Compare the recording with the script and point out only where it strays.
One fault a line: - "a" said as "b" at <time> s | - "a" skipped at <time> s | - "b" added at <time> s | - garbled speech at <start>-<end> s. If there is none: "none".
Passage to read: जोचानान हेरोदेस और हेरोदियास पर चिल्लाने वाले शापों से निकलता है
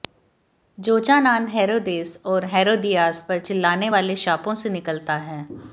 none